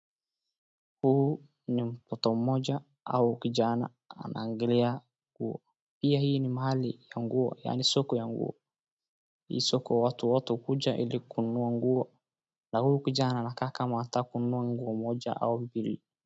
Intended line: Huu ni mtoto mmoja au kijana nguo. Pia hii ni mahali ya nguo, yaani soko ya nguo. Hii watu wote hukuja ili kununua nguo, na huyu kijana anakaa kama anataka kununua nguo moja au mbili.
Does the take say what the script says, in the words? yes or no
no